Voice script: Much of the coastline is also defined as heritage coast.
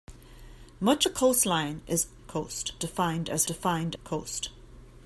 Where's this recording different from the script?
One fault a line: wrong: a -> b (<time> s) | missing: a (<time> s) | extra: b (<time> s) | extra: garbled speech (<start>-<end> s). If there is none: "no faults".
missing: of (1.1 s)
wrong: also -> coast (2.3 s)
wrong: heritage -> defined (3.4 s)